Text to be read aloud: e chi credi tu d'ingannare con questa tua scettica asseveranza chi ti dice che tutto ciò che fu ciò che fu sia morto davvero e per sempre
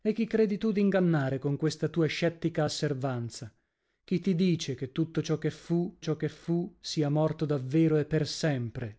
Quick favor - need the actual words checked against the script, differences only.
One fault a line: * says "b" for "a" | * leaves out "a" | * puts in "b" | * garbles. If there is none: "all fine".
all fine